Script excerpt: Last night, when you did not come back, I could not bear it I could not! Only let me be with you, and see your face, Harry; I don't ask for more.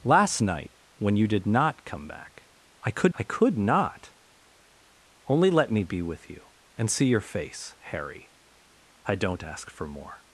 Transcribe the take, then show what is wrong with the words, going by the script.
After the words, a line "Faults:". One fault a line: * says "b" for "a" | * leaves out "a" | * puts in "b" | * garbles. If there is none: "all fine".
Last night, when you did not come back, I could I could not! Only let me be with you, and see your face, Harry; I don't ask for more.
Faults:
* leaves out "not bear it"